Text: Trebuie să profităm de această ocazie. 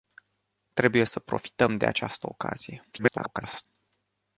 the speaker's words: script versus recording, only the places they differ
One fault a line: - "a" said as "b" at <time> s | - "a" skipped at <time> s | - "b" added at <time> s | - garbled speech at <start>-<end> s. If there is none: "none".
- garbled speech at 2.9-3.7 s